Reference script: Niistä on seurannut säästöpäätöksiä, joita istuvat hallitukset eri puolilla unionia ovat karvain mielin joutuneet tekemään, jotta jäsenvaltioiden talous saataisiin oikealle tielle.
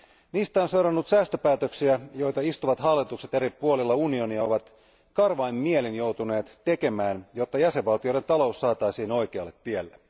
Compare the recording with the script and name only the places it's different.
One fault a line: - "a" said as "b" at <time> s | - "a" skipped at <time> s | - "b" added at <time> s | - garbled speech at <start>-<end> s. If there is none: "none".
none